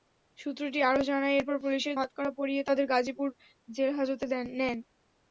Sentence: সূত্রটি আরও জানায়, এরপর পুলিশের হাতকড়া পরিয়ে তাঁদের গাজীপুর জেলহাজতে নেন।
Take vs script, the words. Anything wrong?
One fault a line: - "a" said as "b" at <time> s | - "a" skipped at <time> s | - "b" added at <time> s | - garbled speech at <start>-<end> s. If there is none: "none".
none